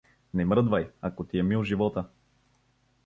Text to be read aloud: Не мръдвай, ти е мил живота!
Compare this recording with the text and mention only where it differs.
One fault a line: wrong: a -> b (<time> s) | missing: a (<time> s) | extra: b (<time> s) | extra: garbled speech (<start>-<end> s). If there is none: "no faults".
extra: ако (1.0 s)